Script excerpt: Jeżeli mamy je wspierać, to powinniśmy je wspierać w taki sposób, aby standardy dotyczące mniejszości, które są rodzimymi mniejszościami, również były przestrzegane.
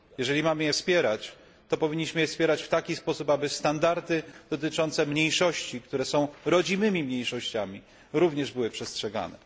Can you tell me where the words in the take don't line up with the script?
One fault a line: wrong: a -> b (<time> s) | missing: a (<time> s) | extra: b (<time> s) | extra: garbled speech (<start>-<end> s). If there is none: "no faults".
no faults